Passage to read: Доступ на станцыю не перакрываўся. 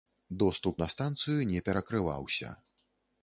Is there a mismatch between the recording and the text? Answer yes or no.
no